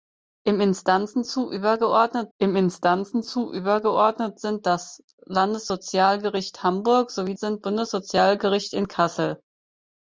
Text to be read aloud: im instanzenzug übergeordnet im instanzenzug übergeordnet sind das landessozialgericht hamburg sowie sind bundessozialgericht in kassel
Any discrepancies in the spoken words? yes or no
no